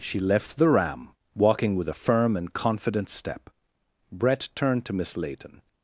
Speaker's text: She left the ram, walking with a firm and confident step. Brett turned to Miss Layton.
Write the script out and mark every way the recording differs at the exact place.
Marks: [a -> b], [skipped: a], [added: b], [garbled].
She left the ram, walking with a firm and confident step. Brett turned to Miss Layton.